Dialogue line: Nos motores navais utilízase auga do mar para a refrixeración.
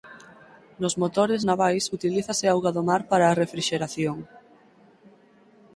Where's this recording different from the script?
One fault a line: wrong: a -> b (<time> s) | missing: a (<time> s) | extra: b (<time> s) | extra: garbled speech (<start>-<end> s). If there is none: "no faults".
no faults